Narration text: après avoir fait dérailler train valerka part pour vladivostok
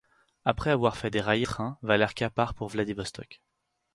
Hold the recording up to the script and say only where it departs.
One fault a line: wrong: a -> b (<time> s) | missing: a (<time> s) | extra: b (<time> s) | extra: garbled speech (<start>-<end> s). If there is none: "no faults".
no faults